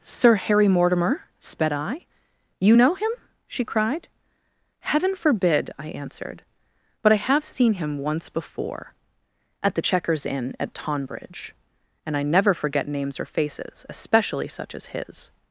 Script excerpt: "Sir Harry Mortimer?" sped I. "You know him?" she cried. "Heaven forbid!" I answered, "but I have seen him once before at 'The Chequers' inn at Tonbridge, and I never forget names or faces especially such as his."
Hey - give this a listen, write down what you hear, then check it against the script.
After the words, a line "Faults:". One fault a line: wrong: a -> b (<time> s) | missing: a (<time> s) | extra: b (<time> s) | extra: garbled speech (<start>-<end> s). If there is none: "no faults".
"Sir Harry Mortimer?" sped I. "You know him?" she cried. "Heaven forbid!" I answered, "but I have seen him once before at 'The Chequers' inn at Tonbridge, and I never forget names or faces especially such as his."
Faults:
no faults